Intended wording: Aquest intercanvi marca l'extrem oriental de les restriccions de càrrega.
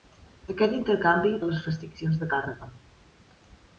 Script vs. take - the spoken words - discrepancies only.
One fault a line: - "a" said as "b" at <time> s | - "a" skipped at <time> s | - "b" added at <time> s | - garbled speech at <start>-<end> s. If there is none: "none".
- "marca l'extrem oriental" skipped at 1.3 s